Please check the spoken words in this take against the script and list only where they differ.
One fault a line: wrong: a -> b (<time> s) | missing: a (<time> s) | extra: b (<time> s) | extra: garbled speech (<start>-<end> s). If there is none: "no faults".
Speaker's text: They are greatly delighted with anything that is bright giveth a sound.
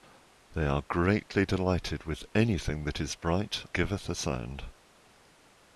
no faults